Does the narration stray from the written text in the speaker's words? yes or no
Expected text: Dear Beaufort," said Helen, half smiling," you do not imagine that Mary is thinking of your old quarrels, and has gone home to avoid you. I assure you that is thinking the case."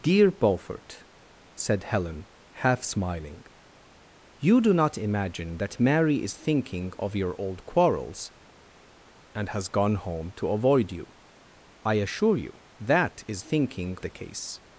no